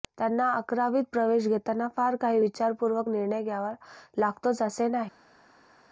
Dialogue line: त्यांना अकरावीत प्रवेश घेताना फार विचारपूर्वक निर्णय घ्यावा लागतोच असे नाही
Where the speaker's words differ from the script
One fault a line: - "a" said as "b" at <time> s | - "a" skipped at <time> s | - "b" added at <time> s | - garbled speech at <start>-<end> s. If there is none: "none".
- "काही" added at 2.2 s